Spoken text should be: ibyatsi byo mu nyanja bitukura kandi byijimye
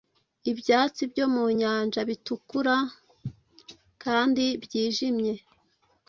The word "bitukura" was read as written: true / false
true